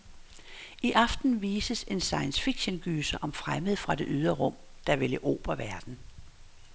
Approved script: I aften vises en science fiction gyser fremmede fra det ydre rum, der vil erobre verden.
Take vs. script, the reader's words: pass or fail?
fail